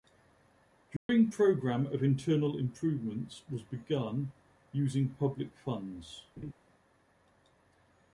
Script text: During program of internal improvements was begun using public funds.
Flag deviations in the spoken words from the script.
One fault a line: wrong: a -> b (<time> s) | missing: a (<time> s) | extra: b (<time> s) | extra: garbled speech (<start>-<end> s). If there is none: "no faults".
no faults